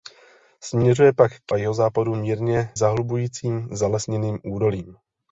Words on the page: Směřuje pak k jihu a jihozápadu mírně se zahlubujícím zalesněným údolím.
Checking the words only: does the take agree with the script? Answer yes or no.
no